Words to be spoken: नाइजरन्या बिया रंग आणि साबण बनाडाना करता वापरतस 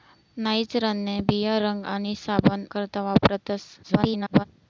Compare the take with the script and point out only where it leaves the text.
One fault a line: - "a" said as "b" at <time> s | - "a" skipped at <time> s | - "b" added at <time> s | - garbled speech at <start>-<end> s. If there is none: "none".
- "बनाडाना" skipped at 2.6 s
- garbled speech at 3.8-4.4 s